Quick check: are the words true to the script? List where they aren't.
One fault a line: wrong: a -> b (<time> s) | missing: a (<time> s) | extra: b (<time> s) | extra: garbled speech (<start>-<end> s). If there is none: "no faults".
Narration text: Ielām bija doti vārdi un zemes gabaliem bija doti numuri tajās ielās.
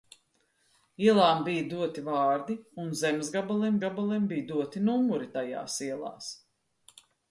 extra: gabaliem (3.8 s)